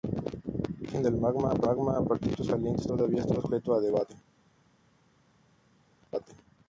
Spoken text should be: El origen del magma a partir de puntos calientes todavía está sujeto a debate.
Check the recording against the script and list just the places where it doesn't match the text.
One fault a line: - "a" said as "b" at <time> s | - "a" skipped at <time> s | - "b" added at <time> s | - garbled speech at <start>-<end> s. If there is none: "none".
none